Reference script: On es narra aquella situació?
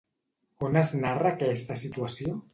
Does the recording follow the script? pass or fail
fail